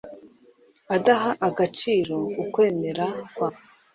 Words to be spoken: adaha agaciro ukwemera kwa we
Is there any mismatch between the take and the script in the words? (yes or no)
no